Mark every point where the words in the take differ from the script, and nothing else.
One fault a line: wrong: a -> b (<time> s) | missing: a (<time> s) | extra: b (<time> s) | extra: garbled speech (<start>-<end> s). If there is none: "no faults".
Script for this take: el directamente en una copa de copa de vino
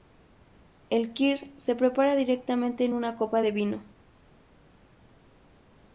extra: kir se prepara (1.1 s)
missing: copa de (3.5 s)